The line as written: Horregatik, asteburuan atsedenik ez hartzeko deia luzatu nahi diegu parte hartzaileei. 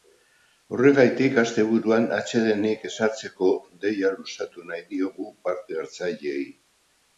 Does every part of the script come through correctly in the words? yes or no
yes